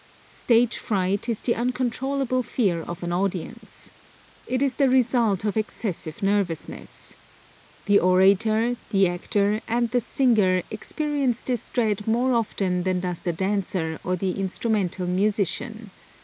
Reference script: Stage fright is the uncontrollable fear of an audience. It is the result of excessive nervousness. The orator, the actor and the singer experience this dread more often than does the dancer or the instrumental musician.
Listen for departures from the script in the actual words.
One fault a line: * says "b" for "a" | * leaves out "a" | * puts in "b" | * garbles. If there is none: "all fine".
all fine